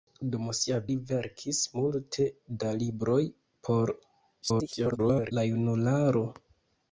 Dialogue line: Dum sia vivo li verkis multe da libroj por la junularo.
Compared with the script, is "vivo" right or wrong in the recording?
wrong